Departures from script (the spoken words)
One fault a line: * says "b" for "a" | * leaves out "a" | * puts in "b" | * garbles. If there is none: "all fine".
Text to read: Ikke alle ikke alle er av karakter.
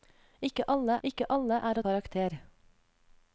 all fine